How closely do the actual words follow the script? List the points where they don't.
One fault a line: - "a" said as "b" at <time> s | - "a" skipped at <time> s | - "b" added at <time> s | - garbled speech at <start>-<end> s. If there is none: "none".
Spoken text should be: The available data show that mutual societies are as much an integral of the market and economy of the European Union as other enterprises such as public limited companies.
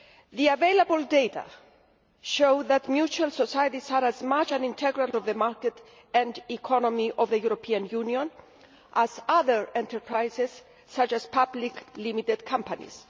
none